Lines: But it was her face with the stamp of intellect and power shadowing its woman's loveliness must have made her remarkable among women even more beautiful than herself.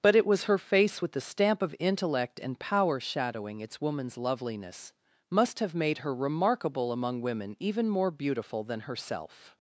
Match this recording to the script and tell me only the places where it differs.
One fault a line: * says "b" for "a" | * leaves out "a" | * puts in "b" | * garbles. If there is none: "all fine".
all fine